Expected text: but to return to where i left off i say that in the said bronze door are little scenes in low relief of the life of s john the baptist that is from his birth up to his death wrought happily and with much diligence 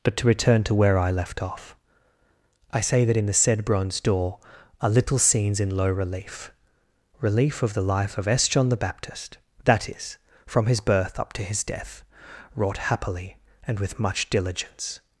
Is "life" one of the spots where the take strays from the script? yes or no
no